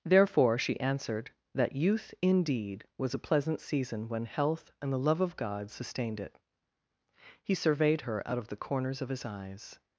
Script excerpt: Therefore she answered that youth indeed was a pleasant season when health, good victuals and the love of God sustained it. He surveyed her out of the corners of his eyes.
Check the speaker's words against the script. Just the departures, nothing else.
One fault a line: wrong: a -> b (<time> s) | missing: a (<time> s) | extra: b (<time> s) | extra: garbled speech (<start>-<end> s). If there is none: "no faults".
missing: good victuals (4.7 s)